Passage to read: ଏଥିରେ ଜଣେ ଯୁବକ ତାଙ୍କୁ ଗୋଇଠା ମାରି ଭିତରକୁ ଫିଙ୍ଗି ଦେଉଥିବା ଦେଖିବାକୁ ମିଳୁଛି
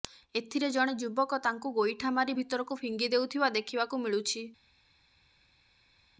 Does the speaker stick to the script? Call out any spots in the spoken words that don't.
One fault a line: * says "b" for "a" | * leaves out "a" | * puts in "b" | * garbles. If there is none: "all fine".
all fine